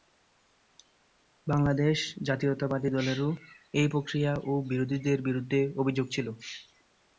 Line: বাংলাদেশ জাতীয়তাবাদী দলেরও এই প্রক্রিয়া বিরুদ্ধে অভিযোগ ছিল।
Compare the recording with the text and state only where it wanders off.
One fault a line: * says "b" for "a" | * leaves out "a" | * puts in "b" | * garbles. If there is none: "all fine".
* puts in "ও বিরোধীদের"